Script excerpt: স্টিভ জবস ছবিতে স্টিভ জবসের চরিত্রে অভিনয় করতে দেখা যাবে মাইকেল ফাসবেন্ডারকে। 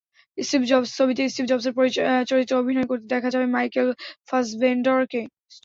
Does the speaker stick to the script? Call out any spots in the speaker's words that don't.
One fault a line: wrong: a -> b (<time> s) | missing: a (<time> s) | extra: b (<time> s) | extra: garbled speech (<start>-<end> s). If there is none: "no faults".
no faults